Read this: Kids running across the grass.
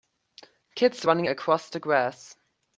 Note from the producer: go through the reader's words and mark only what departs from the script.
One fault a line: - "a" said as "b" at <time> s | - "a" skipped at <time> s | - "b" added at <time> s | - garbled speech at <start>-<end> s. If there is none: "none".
none